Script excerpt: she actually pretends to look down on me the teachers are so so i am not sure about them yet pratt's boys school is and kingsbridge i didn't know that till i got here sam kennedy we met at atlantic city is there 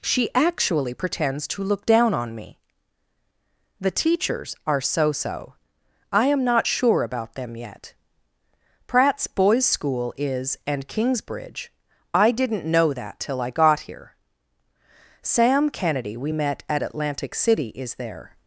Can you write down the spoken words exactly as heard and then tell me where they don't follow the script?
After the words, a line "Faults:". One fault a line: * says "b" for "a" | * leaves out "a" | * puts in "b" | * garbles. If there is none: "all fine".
she actually pretends to look down on me the teachers are so so i am not sure about them yet pratt's boys school is and kingsbridge i didn't know that till i got here sam kennedy we met at atlantic city is there
Faults:
all fine